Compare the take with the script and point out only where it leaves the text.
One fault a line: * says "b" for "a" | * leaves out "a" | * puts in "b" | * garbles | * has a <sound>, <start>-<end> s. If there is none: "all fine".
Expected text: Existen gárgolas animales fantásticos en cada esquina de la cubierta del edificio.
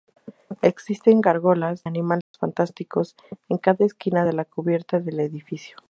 * has a dropout, 2.2-2.3 s